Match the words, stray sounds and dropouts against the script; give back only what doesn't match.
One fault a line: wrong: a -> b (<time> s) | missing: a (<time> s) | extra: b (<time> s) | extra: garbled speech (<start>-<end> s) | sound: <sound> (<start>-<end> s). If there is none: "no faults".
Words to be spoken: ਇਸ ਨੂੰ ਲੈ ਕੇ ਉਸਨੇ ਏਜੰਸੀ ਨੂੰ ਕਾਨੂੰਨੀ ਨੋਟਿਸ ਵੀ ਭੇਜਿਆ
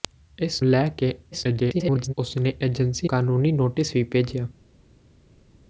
missing: ਨੂੰ (0.6 s)
extra: garbled speech (1.3-2.1 s)
missing: ਨੂੰ (3.1 s)